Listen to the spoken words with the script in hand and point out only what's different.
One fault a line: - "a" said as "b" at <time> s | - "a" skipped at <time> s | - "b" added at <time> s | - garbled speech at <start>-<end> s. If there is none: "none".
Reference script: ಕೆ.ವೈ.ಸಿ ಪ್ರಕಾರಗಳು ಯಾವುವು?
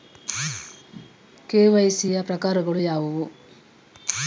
- "ಯ" added at 2.1 s